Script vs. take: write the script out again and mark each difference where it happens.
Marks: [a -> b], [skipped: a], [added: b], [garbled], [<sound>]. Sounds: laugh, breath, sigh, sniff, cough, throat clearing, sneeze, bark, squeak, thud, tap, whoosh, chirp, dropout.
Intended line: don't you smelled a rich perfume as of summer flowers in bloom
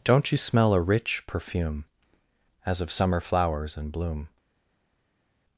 don't you [smelled -> smell] a rich perfume as of summer flowers in bloom